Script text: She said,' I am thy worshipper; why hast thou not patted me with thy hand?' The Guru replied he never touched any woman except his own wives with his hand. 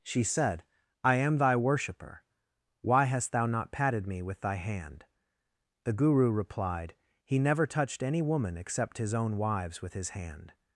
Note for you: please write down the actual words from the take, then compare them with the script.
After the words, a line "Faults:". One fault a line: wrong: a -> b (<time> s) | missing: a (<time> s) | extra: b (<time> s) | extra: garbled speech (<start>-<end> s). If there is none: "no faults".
She said,' I am thy worshipper; why hast thou not patted me with thy hand?' The Guru replied he never touched any woman except his own wives with his hand.
Faults:
no faults